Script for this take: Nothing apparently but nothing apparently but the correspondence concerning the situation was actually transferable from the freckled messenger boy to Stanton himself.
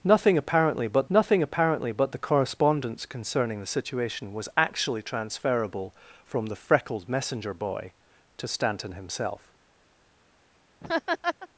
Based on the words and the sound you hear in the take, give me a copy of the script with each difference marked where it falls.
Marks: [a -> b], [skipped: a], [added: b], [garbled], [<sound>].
Nothing apparently but nothing apparently but the correspondence concerning the situation was actually transferable from the freckled messenger boy to Stanton himself. [laugh]